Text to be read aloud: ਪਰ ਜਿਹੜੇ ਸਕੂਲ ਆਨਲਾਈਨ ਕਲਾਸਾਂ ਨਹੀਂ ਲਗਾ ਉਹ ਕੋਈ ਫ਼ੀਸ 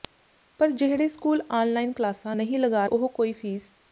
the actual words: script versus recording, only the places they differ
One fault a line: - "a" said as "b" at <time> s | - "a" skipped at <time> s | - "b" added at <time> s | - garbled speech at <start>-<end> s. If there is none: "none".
none